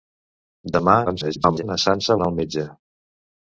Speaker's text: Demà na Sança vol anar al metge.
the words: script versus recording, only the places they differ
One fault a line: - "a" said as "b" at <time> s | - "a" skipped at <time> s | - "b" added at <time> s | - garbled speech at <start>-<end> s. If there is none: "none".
- garbled speech at 1.1-1.6 s
- "vol" skipped at 2.2 s